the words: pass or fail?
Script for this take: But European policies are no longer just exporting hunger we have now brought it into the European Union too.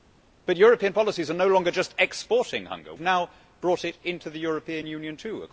fail